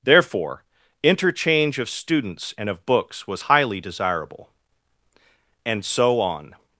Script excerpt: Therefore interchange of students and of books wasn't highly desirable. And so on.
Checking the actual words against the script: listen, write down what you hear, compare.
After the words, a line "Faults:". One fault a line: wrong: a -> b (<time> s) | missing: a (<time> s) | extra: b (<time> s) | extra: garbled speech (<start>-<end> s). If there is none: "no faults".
Therefore interchange of students and of books was highly desirable. And so on.
Faults:
wrong: wasn't -> was (3.3 s)